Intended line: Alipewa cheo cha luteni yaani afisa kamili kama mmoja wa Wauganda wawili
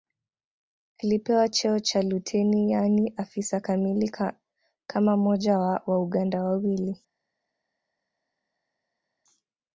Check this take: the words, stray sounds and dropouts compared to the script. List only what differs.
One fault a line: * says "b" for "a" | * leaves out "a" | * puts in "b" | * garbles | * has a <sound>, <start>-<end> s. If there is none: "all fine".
all fine